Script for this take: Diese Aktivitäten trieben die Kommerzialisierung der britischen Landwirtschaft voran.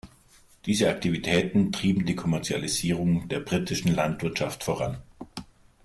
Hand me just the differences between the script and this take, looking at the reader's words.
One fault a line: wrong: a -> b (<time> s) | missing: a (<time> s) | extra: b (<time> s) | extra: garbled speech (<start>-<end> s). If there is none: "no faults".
no faults